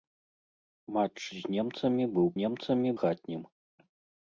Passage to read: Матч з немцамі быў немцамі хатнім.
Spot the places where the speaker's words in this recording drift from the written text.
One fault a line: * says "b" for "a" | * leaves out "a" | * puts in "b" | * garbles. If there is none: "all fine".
all fine